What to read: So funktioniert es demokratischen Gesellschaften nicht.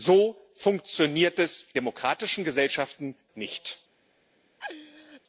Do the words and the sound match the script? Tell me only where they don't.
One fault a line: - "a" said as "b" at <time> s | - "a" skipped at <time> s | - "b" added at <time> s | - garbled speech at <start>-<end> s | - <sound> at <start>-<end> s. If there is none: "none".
- laugh at 4.6-5.2 s